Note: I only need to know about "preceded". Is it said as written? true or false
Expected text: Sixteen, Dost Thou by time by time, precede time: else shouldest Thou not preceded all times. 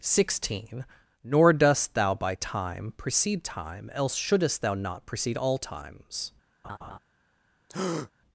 false